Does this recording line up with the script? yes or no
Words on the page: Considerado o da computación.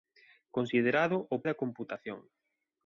yes